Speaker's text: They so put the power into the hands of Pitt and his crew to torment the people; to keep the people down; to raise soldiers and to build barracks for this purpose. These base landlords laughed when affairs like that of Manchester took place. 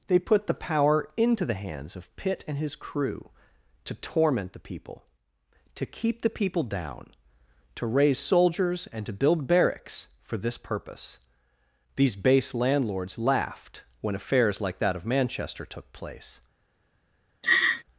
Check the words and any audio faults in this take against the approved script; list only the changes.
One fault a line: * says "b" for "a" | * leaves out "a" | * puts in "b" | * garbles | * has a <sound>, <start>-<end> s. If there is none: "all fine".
* leaves out "so"
* has a laugh, 17.4-17.8 s